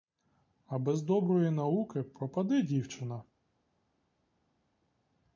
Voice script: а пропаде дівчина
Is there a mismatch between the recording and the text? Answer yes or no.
yes